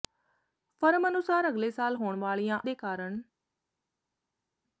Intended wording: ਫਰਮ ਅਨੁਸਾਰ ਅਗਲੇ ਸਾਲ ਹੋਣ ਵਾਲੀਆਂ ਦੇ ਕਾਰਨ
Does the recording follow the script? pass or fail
pass